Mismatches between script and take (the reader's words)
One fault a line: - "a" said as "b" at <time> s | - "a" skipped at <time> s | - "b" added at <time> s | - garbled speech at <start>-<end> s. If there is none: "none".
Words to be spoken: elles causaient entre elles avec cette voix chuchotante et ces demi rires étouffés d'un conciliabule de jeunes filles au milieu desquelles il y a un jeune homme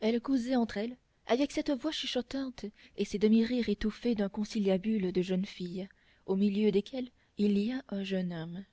none